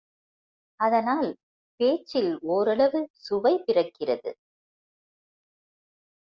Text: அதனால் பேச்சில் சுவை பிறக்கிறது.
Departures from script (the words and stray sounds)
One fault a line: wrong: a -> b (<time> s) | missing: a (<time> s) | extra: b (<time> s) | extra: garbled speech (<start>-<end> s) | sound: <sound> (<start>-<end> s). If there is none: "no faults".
extra: ஓரளவு (2.5 s)